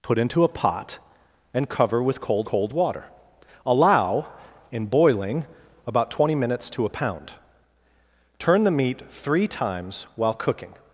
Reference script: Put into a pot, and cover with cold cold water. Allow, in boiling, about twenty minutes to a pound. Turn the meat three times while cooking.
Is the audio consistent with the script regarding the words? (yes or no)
yes